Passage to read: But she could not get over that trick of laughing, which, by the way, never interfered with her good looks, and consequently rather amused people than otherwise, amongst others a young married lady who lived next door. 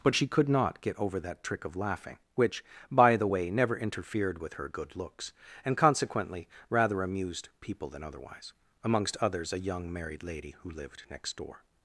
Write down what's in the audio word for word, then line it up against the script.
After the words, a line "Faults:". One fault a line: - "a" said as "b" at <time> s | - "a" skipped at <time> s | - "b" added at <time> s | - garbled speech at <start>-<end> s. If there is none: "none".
But she could not get over that trick of laughing, which, by the way, never interfered with her good looks, and consequently rather amused people than otherwise, amongst others a young married lady who lived next door.
Faults:
none